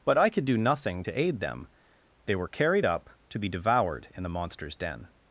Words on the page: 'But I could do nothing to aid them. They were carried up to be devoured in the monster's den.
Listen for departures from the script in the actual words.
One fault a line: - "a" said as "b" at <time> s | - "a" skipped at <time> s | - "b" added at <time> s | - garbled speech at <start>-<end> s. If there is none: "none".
none